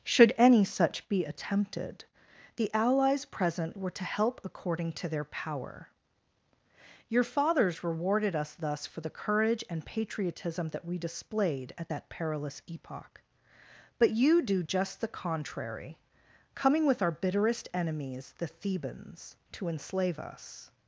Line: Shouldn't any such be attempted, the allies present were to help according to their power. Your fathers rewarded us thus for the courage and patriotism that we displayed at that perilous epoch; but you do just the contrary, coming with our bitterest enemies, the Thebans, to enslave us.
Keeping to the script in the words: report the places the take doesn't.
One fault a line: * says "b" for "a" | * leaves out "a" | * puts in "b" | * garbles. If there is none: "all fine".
* says "Should" for "Shouldn't"